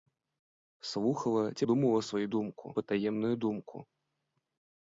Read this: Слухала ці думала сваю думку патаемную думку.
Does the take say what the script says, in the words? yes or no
yes